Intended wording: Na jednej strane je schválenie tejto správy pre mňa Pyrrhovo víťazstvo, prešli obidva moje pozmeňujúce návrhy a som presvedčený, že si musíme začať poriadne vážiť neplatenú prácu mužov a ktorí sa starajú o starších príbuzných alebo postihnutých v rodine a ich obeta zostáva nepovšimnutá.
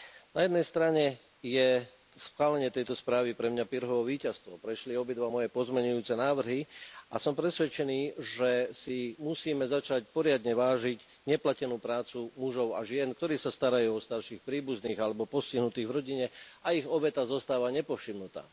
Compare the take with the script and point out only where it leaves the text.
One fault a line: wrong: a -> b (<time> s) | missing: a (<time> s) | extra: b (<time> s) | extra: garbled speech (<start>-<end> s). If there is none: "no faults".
extra: žien (12.8 s)